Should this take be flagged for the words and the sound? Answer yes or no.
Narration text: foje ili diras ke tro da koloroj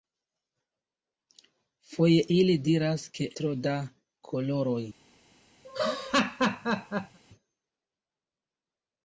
yes